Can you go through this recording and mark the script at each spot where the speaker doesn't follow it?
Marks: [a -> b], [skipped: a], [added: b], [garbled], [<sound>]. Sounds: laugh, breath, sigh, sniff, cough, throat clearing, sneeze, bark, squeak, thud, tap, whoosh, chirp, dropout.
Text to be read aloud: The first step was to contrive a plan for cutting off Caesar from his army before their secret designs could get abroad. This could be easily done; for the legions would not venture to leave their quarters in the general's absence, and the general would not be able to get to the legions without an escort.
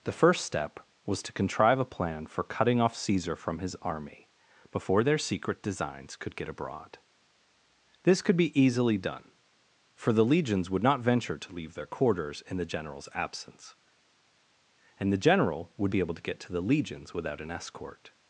The first step was to contrive a plan for cutting off Caesar from his army before their secret designs could get abroad. This could be easily done; for the legions would not venture to leave their quarters in the general's absence, and the general would [skipped: not] be able to get to the legions without an escort.